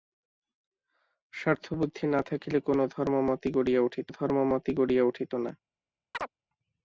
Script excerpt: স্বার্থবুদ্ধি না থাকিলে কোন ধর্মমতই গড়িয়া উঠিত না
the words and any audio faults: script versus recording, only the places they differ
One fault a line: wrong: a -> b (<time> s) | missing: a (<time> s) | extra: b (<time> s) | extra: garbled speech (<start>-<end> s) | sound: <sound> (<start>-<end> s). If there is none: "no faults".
extra: ধর্মমতই গড়িয়া উঠিত (4.1 s)
sound: chirp (6.1-6.3 s)